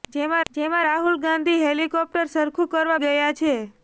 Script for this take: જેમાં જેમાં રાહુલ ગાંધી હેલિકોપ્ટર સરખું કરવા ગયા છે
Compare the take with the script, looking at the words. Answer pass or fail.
pass